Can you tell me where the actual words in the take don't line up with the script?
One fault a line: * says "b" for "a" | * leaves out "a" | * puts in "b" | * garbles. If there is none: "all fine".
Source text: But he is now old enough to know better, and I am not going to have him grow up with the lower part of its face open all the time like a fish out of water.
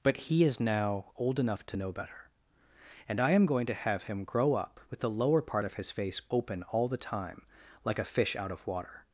* leaves out "not"
* says "his" for "its"